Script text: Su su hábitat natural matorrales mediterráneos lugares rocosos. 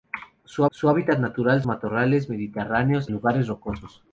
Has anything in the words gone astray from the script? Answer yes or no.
no